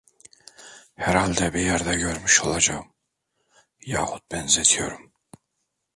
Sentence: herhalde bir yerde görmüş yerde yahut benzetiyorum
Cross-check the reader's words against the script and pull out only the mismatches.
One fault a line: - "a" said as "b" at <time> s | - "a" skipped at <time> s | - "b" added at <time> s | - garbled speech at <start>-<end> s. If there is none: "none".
- "yerde" said as "olacağım" at 2.4 s